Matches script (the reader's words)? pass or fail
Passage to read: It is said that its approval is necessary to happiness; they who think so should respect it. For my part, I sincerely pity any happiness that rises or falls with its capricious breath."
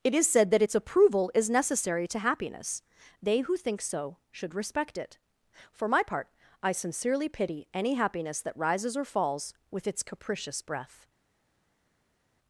pass